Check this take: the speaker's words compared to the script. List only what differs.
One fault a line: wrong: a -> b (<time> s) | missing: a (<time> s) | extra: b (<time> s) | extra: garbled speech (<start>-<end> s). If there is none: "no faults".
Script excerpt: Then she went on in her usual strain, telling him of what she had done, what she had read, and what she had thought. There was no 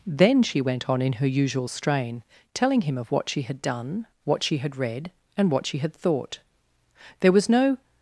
no faults